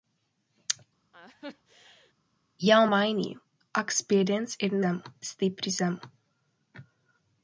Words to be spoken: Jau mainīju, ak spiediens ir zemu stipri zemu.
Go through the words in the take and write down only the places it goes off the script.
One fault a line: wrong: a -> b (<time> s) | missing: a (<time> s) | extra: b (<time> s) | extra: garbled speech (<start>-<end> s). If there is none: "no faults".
no faults